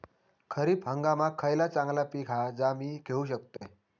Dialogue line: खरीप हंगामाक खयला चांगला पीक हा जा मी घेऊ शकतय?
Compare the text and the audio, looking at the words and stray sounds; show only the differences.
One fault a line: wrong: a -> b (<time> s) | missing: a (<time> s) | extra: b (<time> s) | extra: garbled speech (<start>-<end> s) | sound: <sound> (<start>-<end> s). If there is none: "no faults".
sound: dropout (3.6-3.6 s)